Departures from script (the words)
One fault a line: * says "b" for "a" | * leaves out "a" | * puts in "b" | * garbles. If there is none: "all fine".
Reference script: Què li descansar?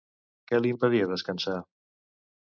* puts in "impedia"